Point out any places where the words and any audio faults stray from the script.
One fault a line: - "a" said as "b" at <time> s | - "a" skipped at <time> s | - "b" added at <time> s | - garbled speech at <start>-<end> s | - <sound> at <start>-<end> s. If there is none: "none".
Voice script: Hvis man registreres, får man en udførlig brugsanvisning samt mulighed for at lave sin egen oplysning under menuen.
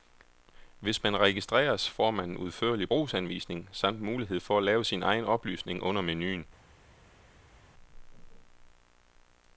none